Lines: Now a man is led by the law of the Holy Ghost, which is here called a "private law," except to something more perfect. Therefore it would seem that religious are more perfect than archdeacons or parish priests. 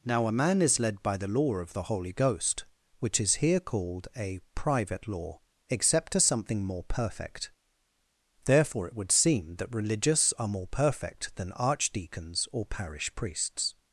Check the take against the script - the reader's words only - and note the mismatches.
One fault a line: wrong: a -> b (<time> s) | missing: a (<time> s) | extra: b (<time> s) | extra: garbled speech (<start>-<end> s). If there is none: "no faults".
no faults